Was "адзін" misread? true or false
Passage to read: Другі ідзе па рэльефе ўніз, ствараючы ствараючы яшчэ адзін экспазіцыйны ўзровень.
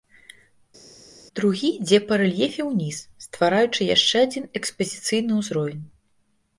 false